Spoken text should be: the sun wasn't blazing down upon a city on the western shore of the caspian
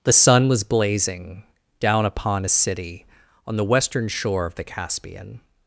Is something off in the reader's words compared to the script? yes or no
yes